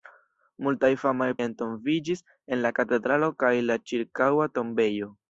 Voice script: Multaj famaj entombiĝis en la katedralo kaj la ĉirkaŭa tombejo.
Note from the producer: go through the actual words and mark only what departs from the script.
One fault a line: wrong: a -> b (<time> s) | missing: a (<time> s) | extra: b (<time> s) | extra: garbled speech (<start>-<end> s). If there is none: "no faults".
no faults